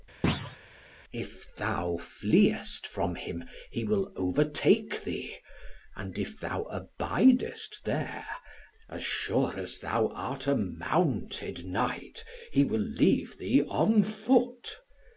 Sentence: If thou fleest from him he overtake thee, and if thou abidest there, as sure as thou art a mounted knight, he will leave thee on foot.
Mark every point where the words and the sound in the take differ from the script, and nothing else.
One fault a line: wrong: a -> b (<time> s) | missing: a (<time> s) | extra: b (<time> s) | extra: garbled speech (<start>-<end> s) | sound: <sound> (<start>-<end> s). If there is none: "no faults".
sound: thud (0.2-0.6 s)
extra: will (3.8 s)